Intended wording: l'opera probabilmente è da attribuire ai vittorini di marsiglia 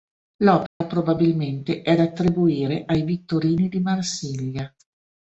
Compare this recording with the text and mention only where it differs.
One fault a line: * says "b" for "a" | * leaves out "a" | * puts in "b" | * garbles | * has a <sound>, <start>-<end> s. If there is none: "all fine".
* has a dropout, 0.7-0.8 s